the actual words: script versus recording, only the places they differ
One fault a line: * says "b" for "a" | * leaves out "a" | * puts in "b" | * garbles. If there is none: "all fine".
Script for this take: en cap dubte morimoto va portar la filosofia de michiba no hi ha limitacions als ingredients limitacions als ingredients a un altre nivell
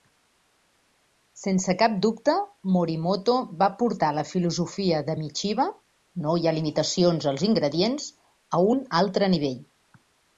* says "sense" for "en"
* leaves out "limitacions als ingredients"